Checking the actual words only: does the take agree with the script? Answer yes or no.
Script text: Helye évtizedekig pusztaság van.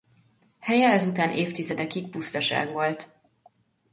no